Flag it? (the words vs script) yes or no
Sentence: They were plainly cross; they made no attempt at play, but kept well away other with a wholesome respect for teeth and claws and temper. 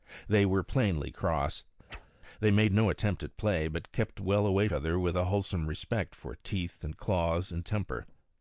no